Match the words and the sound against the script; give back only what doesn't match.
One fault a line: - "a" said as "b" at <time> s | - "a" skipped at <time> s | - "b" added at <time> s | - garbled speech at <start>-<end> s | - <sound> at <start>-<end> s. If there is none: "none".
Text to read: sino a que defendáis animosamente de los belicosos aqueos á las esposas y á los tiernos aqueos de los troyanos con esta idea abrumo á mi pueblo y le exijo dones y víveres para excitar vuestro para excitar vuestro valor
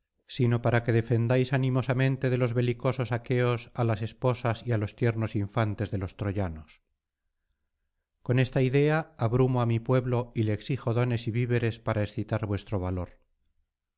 - "a" said as "para" at 0.6 s
- "aqueos" said as "infantes" at 5.4 s
- "para excitar vuestro" skipped at 12.8 s